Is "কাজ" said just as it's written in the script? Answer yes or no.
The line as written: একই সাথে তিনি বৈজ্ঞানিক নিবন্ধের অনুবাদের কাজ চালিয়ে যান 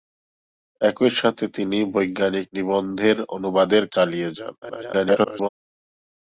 no